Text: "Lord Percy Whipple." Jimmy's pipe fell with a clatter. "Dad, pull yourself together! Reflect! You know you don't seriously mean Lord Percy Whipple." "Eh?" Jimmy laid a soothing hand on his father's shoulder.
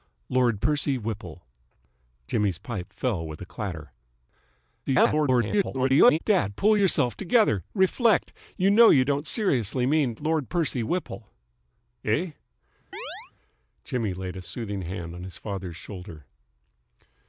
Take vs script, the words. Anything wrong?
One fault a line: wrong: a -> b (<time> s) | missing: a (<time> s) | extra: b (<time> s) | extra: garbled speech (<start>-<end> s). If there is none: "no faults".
extra: garbled speech (4.9-6.2 s)